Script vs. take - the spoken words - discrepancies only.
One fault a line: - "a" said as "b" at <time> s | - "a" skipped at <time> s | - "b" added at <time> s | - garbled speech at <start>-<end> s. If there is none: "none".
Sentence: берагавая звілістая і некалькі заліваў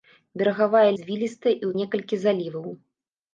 none